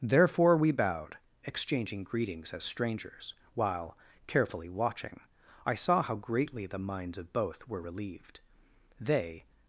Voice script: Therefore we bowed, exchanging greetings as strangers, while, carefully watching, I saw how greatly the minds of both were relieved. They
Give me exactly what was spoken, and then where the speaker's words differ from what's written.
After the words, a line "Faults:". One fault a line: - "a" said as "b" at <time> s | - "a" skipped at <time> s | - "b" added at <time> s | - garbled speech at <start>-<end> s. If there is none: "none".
Therefore we bowed, exchanging greetings as strangers, while, carefully watching, I saw how greatly the minds of both were relieved. They
Faults:
none